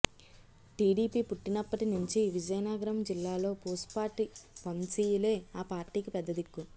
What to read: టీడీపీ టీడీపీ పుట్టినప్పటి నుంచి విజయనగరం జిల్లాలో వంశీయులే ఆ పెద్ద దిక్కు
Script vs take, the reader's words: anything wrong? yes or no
yes